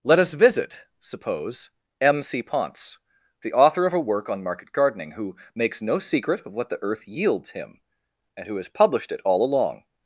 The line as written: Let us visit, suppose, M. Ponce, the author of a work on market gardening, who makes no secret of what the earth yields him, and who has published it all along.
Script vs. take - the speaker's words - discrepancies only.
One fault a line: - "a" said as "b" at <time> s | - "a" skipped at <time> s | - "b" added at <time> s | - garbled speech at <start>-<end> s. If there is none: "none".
- "c" added at 2.2 s